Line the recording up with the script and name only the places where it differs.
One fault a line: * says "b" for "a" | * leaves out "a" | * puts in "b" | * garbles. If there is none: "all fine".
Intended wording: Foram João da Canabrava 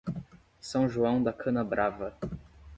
* says "São" for "Foram"